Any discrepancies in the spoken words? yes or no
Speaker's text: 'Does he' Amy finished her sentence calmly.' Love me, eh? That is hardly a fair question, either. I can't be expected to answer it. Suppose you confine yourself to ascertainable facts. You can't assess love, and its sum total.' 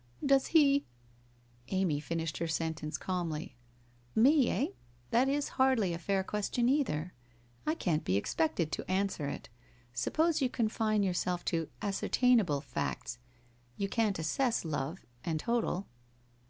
yes